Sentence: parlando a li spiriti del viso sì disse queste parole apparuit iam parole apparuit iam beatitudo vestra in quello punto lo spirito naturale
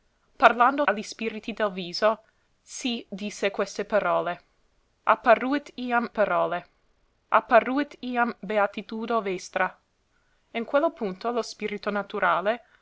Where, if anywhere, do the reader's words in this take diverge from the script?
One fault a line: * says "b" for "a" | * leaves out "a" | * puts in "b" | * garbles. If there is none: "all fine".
all fine